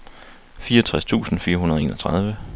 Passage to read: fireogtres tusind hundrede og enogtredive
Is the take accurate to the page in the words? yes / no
no